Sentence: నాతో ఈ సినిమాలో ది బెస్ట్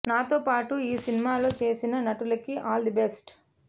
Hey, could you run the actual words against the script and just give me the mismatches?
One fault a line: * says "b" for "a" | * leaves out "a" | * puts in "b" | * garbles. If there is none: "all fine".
* puts in "పాటు"
* puts in "చేసిన నటులకి ఆల్"